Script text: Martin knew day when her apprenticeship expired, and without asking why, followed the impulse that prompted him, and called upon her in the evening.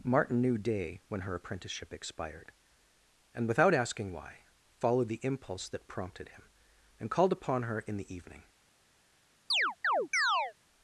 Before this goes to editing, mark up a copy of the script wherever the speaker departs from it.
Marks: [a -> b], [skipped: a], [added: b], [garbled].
Martin knew day when her apprenticeship expired, and without asking why, followed the impulse that prompted him, and called upon her in the evening.